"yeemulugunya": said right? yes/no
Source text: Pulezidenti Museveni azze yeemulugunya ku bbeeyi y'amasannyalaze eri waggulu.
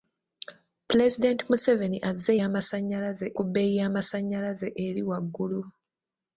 no